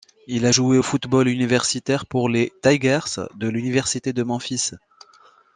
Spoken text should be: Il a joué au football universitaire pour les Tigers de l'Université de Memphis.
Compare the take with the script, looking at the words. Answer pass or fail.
pass